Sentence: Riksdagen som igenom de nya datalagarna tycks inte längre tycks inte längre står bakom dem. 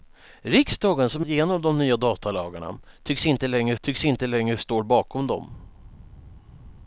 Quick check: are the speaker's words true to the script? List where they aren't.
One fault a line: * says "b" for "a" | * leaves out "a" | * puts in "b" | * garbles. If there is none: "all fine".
all fine